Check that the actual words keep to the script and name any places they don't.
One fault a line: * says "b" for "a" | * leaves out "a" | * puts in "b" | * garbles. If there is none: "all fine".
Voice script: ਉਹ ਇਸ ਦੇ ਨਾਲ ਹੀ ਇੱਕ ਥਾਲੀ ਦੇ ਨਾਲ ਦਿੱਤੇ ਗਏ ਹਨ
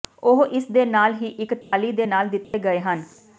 all fine